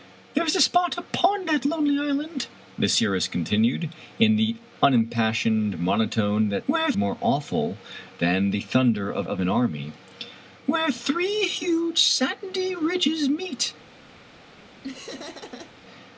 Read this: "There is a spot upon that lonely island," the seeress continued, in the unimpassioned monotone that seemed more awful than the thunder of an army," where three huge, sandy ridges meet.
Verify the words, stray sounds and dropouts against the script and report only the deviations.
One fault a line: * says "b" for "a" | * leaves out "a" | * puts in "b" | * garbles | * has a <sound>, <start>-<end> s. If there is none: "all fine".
* says "where" for "seemed"
* puts in "of"
* has a laugh, 14.8-15.7 s